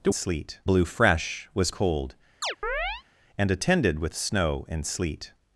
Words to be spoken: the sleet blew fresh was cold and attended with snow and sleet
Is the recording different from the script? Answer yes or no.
no